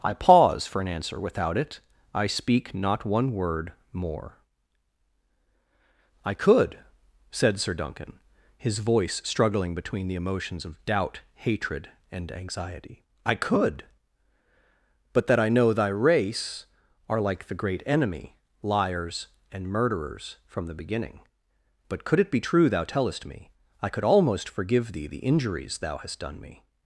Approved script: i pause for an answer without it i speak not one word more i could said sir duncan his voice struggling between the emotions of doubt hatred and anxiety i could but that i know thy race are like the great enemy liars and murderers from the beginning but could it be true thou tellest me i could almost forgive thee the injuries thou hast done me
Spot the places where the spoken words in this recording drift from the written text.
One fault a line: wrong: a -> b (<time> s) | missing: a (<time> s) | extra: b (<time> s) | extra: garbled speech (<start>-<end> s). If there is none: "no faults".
no faults